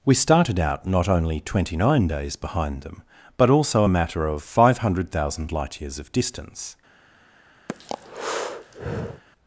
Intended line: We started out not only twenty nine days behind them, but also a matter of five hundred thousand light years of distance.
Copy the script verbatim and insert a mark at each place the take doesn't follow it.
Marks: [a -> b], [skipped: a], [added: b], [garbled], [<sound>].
We started out not only twenty nine days behind them, but also a matter of five hundred thousand light years of distance. [breath]